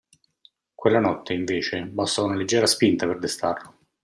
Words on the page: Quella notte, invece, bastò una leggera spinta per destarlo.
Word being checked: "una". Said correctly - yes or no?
yes